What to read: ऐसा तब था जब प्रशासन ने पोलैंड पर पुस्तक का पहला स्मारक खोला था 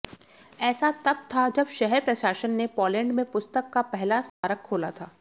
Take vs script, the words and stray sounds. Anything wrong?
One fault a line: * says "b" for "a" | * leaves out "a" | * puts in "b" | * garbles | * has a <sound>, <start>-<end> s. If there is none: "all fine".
* puts in "शहर"
* says "में" for "पर"
* has a dropout, 4.3-4.4 s